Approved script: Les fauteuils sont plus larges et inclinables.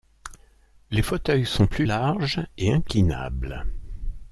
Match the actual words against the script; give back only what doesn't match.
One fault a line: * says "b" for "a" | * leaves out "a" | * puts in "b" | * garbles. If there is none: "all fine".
all fine